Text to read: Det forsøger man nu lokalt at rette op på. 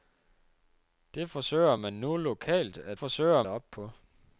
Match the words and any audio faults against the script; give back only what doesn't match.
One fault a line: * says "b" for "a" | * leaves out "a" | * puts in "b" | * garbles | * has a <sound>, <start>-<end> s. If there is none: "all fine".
* says "forsøger" for "rette"